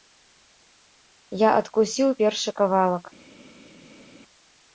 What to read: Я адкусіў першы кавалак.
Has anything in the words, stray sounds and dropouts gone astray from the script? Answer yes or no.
no